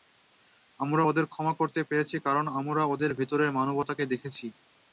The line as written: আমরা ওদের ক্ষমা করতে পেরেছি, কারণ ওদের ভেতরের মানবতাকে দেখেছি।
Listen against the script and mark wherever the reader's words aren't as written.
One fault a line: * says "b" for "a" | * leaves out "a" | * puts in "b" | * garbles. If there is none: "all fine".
* puts in "আমরা"